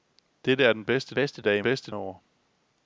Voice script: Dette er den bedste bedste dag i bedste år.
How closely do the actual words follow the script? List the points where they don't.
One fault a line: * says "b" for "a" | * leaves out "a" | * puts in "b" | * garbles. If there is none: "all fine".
all fine